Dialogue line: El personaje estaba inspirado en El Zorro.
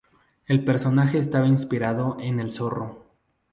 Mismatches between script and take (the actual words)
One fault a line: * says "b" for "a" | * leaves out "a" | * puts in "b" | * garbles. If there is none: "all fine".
all fine